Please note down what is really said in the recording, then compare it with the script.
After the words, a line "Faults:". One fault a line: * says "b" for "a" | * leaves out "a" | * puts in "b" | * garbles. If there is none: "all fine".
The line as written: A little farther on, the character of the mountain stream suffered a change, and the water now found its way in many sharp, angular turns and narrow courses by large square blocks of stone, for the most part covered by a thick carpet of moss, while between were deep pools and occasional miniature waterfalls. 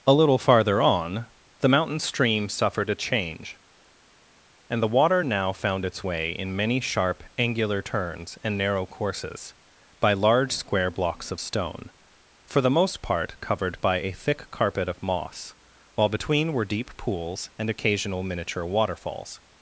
A little farther on, the mountain stream suffered a change, and the water now found its way in many sharp, angular turns and narrow courses by large square blocks of stone, for the most part covered by a thick carpet of moss, while between were deep pools and occasional miniature waterfalls.
Faults:
* leaves out "character of the"